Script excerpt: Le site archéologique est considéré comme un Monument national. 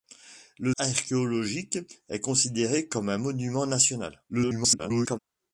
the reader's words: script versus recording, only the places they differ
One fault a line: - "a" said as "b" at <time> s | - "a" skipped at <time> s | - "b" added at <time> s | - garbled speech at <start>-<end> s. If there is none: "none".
- "site" skipped at 0.7 s
- garbled speech at 4.3-5.2 s